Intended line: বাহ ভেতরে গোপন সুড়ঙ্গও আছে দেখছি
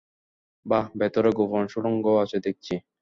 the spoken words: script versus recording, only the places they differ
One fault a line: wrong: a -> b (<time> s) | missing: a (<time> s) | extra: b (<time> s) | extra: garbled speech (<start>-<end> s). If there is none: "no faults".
no faults